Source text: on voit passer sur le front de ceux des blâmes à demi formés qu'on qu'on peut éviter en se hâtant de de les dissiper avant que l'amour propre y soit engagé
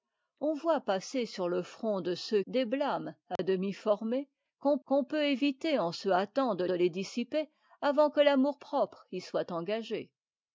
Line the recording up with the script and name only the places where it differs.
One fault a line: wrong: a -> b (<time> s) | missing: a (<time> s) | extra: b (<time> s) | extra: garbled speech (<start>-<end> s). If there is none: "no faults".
no faults